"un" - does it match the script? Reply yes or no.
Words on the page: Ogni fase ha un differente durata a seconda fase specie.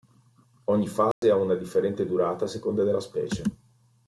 no